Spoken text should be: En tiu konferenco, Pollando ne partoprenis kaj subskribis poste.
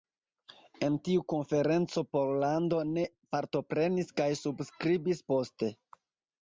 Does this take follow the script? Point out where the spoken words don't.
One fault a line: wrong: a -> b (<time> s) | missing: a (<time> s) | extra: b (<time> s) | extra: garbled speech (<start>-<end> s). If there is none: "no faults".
no faults